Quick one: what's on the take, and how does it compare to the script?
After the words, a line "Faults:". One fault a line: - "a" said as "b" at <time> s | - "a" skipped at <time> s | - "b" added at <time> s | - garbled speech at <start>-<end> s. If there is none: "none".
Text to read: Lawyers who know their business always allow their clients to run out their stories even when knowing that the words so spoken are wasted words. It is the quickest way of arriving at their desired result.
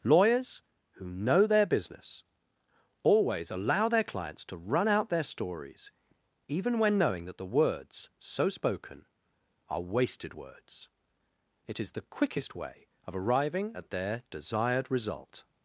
Lawyers who know their business always allow their clients to run out their stories even when knowing that the words so spoken are wasted words. It is the quickest way of arriving at their desired result.
Faults:
none